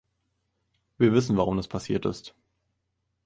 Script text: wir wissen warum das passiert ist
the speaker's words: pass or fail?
pass